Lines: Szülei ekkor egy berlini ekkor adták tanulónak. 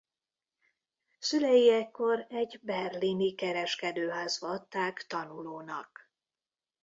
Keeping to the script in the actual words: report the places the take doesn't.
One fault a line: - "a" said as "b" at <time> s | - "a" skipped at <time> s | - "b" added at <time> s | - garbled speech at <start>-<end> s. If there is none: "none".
- "ekkor" said as "kereskedőházba" at 3.4 s